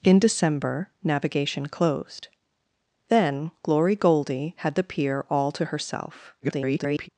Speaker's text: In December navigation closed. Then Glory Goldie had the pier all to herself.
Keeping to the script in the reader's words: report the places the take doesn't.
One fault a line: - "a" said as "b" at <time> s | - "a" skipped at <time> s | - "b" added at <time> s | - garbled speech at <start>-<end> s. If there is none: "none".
- garbled speech at 6.4-7.1 s